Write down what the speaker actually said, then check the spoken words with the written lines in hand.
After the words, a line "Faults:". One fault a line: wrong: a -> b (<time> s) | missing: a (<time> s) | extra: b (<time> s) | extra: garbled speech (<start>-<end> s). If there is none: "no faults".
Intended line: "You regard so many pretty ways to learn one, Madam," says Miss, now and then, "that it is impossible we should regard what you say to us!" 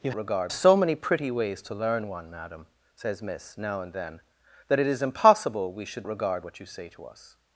"You regard so many pretty ways to learn one, Madam," says Miss, now and then, "that it is impossible we should regard what you say to us!"
Faults:
no faults